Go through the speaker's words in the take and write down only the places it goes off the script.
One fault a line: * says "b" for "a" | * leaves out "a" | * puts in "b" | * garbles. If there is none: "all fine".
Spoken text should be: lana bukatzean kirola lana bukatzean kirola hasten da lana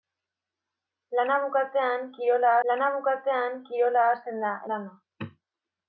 all fine